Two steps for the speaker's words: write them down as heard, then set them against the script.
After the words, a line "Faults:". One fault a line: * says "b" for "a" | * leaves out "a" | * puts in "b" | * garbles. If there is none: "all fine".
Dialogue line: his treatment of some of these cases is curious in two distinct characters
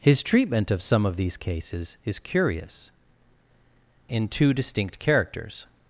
his treatment of some of these cases is curious in two distinct characters
Faults:
all fine